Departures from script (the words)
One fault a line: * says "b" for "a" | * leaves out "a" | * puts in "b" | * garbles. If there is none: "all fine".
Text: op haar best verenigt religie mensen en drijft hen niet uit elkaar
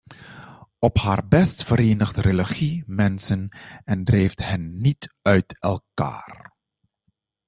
all fine